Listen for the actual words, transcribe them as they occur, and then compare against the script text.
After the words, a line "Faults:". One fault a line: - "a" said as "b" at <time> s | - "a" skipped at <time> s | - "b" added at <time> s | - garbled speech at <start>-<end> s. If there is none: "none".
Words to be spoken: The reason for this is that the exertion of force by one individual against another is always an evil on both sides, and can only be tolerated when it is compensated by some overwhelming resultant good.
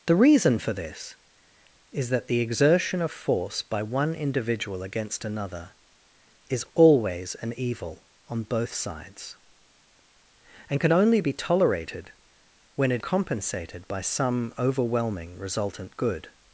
The reason for this is that the exertion of force by one individual against another is always an evil on both sides, and can only be tolerated when it compensated by some overwhelming resultant good.
Faults:
- "is" skipped at 13.0 s